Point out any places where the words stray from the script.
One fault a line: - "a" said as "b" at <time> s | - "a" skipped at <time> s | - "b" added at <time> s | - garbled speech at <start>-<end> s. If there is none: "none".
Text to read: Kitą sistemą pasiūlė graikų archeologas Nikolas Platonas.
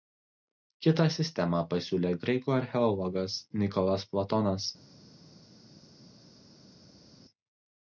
none